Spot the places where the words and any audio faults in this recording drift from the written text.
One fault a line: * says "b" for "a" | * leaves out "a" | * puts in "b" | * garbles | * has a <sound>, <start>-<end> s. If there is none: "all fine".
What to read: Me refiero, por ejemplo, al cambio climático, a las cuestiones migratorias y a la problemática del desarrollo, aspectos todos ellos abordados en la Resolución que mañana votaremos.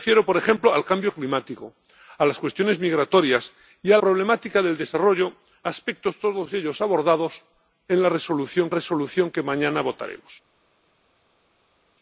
* leaves out "la"
* puts in "Resolución"